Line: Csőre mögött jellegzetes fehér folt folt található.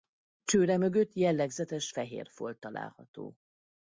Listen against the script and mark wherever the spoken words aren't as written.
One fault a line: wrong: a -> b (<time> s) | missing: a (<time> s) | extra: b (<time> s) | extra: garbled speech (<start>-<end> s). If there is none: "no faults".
missing: folt (2.6 s)